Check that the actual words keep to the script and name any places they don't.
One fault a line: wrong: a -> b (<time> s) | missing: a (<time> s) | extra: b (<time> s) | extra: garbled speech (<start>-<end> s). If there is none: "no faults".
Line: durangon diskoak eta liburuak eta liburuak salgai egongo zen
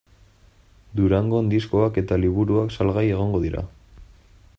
missing: eta liburuak (2.7 s)
wrong: zen -> dira (3.4 s)